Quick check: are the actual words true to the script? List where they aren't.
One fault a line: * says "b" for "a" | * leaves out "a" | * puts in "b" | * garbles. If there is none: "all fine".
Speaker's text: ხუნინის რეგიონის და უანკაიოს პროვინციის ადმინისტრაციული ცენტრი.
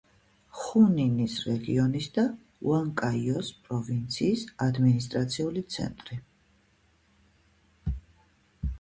all fine